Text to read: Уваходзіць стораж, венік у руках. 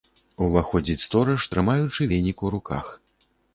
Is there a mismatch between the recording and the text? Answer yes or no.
yes